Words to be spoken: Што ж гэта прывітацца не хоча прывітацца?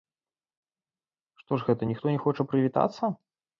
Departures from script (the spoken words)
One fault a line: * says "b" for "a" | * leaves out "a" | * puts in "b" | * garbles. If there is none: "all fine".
* says "ніхто" for "прывітацца"